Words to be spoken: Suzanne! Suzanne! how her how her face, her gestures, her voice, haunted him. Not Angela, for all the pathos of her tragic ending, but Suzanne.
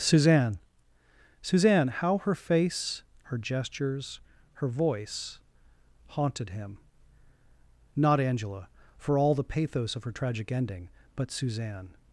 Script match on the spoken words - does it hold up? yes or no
no